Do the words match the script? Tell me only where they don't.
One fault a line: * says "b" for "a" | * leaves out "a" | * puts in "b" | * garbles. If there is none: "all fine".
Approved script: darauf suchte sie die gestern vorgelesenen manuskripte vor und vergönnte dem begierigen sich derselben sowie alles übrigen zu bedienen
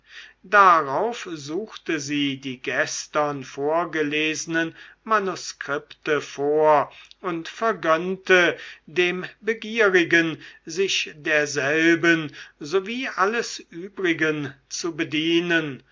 all fine